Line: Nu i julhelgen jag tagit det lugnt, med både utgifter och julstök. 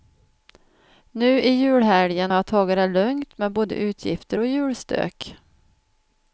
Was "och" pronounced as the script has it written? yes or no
yes